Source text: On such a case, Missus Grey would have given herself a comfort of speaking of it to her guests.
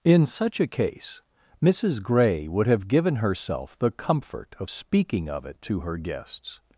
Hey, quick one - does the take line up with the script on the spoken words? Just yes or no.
no